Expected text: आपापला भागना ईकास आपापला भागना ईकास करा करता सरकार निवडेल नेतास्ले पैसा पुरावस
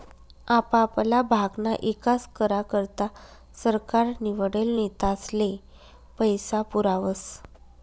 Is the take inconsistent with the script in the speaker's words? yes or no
yes